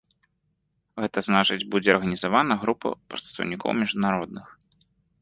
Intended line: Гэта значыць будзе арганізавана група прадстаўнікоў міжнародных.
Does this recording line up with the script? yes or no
yes